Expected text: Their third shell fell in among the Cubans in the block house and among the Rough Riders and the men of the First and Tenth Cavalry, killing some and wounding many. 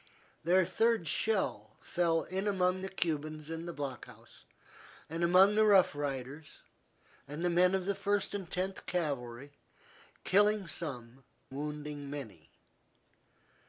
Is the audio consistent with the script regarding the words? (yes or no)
no